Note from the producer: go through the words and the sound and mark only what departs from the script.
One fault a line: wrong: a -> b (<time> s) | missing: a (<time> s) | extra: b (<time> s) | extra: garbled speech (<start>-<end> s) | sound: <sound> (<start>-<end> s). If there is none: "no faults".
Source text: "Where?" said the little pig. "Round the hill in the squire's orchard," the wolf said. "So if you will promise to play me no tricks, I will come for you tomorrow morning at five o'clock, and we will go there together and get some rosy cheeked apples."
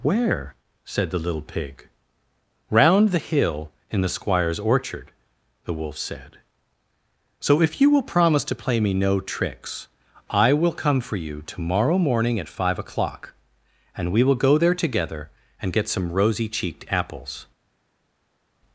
no faults